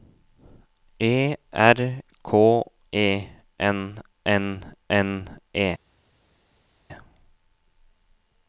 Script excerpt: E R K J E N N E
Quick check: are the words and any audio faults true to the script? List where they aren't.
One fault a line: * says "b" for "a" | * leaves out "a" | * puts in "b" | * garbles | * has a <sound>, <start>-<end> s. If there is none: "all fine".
* says "E N" for "J E"